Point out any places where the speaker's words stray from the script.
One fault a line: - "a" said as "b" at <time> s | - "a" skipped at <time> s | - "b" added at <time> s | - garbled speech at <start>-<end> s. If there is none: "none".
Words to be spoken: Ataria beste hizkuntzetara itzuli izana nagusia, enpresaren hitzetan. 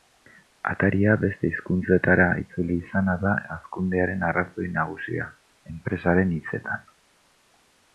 - "da hazkundearen arrazoi" added at 3.2 s